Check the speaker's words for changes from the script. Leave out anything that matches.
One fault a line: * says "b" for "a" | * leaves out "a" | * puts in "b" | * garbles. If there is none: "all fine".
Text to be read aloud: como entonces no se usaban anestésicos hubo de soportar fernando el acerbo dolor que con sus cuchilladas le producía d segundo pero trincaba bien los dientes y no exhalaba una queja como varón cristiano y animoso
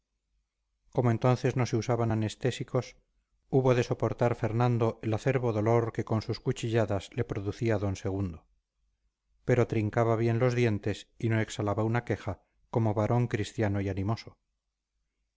all fine